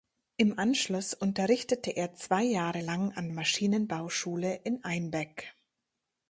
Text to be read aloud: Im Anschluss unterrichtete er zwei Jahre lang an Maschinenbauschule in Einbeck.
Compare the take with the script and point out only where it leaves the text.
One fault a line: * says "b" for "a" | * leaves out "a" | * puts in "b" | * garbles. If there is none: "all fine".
all fine